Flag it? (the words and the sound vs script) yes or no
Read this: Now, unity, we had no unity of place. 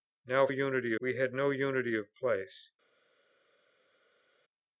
no